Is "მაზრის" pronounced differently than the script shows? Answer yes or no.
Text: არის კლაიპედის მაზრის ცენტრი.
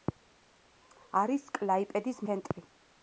yes